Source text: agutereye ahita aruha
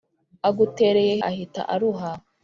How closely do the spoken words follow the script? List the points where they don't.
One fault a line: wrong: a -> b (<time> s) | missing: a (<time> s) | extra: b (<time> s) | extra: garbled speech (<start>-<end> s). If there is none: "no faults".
no faults